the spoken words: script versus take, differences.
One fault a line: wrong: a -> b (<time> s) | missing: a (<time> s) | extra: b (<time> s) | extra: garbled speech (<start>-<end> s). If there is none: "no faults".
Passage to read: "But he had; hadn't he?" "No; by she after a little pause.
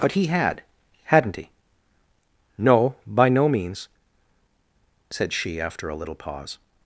extra: no means said (3.3 s)